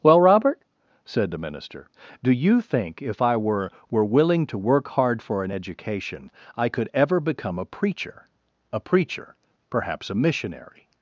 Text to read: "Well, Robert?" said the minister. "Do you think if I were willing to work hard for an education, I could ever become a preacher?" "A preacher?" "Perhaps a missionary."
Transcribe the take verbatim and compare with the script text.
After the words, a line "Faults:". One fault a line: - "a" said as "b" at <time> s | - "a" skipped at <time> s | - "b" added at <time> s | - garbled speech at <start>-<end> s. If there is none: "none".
"Well, Robert?" said the minister. "Do you think if I were were willing to work hard for an education, I could ever become a preacher?" "A preacher?" "Perhaps a missionary."
Faults:
- "were" added at 3.9 s